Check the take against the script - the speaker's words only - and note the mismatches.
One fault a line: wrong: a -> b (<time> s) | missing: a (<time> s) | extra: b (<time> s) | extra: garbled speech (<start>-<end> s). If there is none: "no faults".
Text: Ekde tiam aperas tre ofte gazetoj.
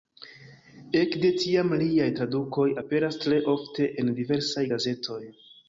extra: liaj tradukoj (1.8 s)
extra: en diversaj (4.1 s)